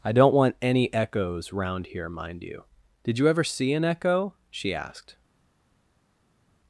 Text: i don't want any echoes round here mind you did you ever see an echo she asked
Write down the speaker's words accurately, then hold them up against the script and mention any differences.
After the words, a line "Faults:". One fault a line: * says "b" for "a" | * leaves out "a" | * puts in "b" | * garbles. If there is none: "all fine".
i don't want any echoes round here mind you did you ever see an echo she asked
Faults:
all fine